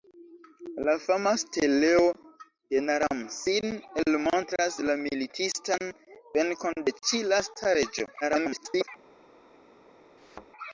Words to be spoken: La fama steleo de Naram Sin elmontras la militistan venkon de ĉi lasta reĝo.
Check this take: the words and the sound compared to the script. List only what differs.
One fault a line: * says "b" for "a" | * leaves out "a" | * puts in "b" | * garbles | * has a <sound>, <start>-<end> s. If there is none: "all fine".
* garbles
* has a thud, 10.2-10.5 s